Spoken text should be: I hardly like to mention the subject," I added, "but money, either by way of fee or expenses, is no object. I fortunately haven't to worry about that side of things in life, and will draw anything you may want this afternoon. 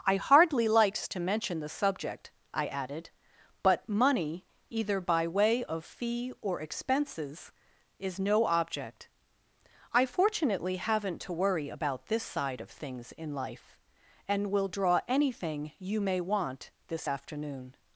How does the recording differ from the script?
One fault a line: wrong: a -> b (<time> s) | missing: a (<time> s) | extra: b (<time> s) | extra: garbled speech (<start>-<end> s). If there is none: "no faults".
wrong: like -> likes (0.7 s)
wrong: that -> this (12.1 s)